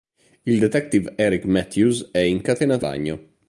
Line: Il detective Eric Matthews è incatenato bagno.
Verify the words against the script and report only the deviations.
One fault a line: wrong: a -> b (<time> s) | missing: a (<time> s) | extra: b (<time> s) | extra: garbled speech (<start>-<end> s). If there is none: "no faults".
no faults